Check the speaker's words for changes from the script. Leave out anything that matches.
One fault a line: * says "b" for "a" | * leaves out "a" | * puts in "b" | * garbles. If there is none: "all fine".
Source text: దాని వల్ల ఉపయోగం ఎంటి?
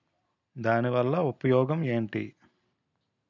all fine